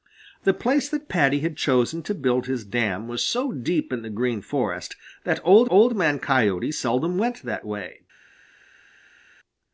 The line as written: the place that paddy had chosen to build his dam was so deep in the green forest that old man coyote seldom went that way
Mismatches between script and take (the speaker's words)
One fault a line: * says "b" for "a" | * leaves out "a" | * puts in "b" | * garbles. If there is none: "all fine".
* puts in "old"